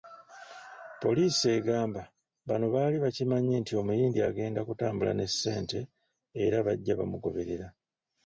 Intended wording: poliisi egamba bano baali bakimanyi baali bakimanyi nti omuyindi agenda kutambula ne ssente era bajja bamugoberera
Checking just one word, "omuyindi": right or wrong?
right